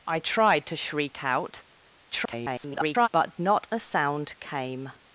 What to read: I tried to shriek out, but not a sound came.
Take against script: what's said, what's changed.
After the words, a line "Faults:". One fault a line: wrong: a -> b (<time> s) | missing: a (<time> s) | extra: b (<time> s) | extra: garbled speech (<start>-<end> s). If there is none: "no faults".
I tried to shriek out, [garbled] but not a sound came.
Faults:
extra: garbled speech (2.1-3.1 s)